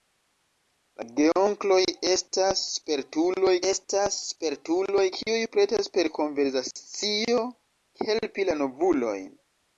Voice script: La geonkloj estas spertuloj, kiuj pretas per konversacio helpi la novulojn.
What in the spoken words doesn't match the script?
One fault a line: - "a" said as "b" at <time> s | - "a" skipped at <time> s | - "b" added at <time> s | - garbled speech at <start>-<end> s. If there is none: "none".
- "estas spertuloj" added at 3.7 s